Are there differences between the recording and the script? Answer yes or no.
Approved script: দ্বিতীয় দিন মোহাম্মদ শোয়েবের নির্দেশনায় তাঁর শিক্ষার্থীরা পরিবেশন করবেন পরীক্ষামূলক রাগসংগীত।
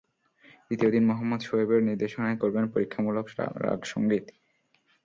yes